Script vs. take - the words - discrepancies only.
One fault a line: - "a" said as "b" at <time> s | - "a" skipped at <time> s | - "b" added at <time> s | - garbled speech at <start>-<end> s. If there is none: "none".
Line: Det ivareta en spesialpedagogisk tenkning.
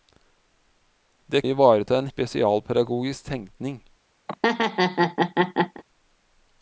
none